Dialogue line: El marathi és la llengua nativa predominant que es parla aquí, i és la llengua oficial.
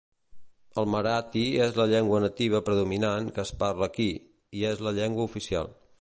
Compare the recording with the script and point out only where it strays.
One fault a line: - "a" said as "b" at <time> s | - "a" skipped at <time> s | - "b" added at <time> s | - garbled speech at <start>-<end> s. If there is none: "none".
none